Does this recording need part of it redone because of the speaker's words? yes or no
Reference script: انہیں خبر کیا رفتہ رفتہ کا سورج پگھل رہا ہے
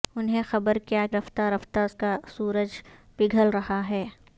no